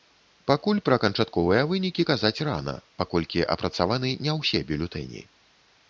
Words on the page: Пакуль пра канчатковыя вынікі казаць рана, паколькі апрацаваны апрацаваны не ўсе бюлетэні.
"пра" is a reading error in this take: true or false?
false